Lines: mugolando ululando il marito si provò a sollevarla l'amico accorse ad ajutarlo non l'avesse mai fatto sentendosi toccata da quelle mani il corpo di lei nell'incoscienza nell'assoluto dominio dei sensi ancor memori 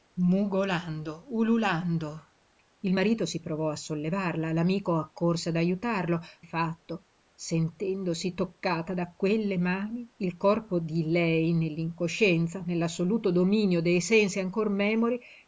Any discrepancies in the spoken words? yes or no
yes